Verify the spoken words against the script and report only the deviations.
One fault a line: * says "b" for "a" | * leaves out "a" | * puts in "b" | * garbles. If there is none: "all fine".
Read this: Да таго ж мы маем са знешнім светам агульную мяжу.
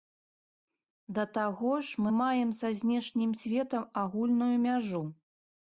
all fine